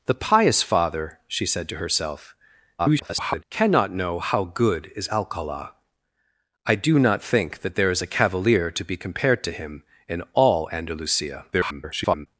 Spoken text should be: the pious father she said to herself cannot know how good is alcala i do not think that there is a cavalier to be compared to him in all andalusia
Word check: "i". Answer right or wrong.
right